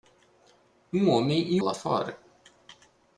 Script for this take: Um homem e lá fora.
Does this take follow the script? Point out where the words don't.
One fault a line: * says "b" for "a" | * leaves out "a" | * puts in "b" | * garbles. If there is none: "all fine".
all fine